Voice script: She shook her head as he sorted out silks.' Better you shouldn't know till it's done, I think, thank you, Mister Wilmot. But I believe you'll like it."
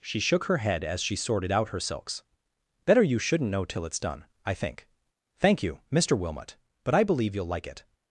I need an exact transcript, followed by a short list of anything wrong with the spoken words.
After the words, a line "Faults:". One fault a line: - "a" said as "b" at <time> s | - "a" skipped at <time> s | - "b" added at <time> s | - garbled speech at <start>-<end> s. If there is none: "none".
She shook her head as she sorted out her silks.' Better you shouldn't know till it's done, I think, thank you, Mister Wilmot. But I believe you'll like it."
Faults:
- "he" said as "she" at 1.0 s
- "her" added at 1.7 s